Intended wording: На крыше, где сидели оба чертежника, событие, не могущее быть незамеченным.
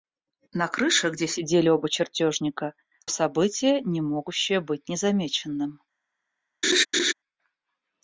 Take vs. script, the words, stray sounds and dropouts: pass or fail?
fail